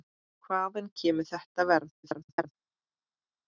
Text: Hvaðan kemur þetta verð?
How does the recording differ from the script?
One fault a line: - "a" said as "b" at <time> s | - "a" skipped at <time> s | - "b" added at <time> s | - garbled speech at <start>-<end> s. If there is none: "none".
- garbled speech at 2.0-2.5 s